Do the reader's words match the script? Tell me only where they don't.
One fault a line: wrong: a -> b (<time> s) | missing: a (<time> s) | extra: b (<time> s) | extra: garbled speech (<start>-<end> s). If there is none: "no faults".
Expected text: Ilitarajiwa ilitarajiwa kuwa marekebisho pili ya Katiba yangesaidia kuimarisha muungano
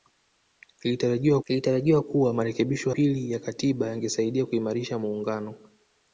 no faults